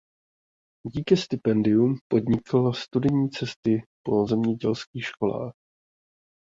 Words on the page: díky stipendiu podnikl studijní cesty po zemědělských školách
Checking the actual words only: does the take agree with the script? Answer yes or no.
yes